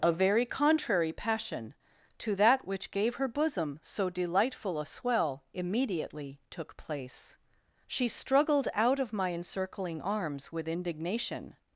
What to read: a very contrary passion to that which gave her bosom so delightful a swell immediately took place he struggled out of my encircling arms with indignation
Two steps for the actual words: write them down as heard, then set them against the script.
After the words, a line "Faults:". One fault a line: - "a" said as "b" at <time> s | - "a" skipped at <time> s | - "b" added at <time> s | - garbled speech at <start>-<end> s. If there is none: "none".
a very contrary passion to that which gave her bosom so delightful a swell immediately took place she struggled out of my encircling arms with indignation
Faults:
- "he" said as "she" at 7.8 s